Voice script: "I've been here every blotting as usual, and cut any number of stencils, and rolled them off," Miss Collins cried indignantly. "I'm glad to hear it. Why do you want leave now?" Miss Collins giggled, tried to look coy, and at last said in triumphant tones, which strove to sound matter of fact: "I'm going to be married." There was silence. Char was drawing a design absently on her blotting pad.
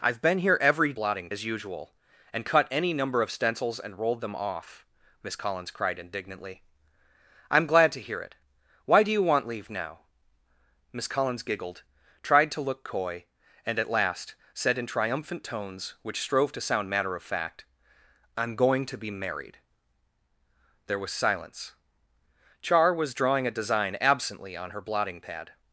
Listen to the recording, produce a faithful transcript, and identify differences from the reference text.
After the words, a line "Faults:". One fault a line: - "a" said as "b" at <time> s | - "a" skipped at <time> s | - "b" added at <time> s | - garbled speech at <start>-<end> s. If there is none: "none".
"I've been here every blotting as usual, and cut any number of stencils, and rolled them off," Miss Collins cried indignantly. "I'm glad to hear it. Why do you want leave now?" Miss Collins giggled, tried to look coy, and at last said in triumphant tones, which strove to sound matter of fact: "I'm going to be married." There was silence. Char was drawing a design absently on her blotting pad.
Faults:
none